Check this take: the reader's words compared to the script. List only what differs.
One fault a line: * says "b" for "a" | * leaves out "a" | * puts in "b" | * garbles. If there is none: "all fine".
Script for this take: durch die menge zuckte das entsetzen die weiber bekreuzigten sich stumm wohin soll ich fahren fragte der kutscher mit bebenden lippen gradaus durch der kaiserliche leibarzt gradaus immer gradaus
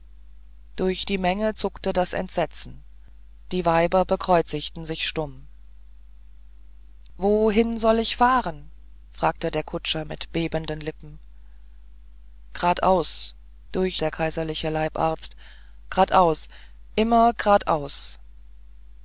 all fine